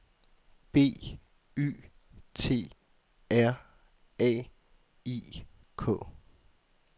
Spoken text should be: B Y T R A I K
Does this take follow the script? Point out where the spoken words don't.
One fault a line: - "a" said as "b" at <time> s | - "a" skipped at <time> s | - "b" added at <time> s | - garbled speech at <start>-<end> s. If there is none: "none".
none